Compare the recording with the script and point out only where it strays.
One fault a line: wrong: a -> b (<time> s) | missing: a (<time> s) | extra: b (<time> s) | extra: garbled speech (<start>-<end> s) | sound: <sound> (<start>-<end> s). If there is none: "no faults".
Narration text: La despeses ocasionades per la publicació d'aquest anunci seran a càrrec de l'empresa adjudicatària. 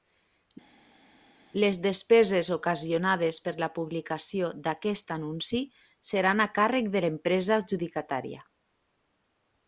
wrong: La -> Les (1.6 s)